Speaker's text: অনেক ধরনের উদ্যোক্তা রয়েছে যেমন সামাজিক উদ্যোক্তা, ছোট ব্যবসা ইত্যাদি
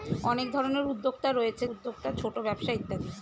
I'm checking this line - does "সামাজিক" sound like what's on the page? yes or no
no